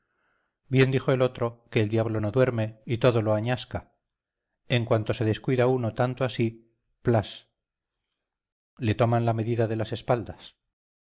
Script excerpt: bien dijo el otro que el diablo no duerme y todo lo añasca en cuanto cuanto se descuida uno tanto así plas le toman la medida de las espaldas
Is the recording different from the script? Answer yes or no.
yes